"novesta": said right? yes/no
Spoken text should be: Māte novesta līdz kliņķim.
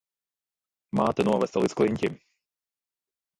yes